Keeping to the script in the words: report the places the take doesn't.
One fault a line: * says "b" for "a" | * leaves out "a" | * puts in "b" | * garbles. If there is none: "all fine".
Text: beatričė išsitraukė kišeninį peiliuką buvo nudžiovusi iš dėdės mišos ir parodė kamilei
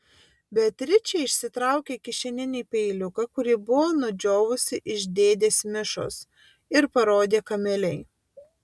* puts in "kurį"